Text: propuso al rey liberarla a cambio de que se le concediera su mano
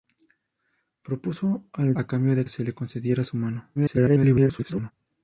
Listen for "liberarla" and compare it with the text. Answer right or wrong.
wrong